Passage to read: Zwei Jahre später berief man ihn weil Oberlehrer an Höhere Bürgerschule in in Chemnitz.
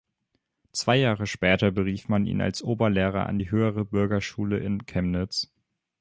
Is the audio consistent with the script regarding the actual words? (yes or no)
no